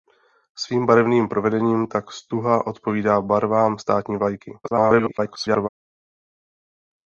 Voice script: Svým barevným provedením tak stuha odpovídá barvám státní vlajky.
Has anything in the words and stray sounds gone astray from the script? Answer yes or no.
yes